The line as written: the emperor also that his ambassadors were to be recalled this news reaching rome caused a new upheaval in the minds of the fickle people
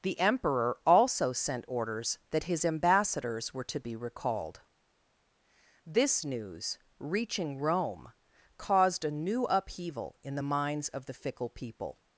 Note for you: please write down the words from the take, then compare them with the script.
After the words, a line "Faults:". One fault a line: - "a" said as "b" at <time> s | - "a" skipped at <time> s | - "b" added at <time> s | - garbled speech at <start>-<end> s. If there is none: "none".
the emperor also sent orders that his ambassadors were to be recalled this news reaching rome caused a new upheaval in the minds of the fickle people
Faults:
- "sent orders" added at 1.3 s